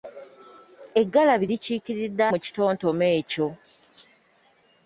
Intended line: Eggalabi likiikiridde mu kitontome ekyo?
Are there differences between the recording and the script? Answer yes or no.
no